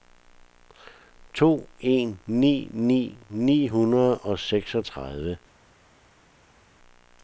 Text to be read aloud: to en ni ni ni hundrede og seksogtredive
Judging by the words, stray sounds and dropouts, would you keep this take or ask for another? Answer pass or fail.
pass